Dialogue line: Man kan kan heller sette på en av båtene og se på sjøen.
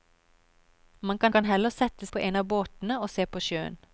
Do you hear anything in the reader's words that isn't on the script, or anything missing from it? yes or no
no